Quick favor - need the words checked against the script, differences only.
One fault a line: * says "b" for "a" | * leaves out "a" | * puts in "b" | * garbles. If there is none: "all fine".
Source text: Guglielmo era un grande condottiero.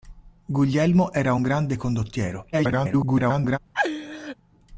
* garbles